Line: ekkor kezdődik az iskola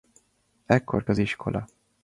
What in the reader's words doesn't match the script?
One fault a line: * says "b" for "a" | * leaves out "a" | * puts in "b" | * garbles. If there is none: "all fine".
* leaves out "kezdődik"